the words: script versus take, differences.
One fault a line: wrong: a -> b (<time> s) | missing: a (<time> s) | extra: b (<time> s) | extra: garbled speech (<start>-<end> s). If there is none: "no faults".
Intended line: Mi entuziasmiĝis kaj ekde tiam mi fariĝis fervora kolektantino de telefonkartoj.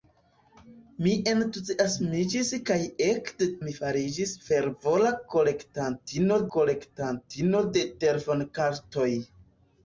missing: tiam (3.5 s)
extra: kolektantino (6.6 s)